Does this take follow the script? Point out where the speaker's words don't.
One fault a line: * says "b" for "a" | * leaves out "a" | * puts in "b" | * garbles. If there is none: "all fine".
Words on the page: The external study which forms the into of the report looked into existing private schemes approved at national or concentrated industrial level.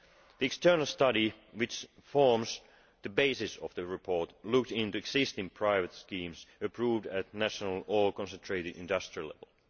* says "basis" for "into"